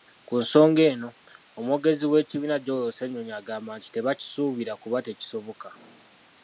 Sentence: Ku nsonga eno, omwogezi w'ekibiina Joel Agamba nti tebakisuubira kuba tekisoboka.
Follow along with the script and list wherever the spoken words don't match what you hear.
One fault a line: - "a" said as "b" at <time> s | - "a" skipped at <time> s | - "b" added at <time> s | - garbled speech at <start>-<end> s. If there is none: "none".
- "Ssennyonyi" added at 2.9 s